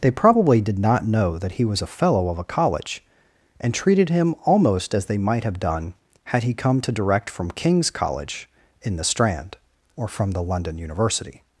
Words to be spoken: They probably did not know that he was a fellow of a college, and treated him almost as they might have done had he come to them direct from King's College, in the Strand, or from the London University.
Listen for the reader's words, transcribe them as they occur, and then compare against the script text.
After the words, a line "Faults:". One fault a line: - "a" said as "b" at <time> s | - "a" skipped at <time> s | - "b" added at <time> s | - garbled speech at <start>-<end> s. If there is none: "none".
They probably did not know that he was a fellow of a college, and treated him almost as they might have done had he come to direct from King's College, in the Strand, or from the London University.
Faults:
- "them" skipped at 6.9 s